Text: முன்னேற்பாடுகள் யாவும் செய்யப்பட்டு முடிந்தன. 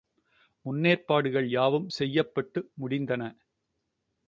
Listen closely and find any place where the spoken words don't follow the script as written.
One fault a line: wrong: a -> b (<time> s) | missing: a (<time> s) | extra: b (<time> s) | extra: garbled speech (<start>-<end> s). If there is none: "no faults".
no faults